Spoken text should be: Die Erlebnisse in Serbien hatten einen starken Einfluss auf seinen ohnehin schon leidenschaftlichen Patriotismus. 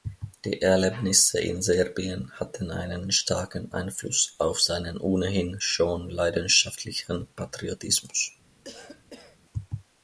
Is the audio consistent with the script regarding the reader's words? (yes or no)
yes